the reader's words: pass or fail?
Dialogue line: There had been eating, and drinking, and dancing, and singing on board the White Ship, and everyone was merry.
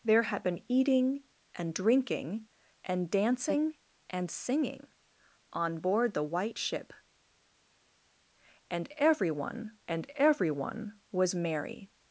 fail